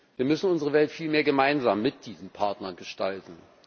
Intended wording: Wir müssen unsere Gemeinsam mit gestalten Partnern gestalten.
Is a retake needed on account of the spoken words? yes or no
yes